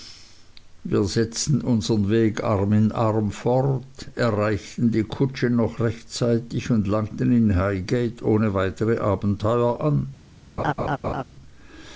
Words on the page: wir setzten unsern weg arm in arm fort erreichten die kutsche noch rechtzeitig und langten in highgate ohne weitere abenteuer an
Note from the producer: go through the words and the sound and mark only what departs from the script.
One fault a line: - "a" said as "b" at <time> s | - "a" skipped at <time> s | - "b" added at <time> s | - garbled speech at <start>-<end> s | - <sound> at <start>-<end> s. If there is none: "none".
- laugh at 10.6-11.2 s